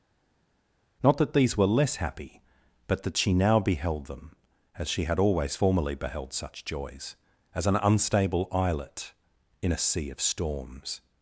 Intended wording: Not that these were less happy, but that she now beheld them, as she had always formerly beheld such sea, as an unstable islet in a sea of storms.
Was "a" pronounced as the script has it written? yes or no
yes